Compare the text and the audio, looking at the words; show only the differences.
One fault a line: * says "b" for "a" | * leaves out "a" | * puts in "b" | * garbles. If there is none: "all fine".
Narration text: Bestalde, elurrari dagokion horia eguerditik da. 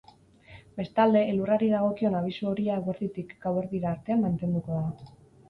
* puts in "abisu"
* puts in "gauerdira artean mantenduko"